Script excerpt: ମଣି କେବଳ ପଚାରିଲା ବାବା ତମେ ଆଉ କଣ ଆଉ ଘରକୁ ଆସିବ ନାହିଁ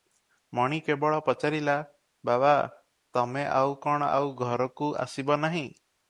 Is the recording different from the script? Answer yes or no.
no